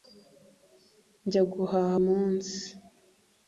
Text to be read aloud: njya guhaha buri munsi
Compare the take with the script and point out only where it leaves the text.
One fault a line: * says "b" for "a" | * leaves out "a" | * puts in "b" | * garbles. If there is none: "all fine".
* leaves out "buri"